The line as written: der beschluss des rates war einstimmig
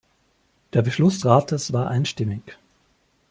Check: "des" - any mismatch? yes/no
yes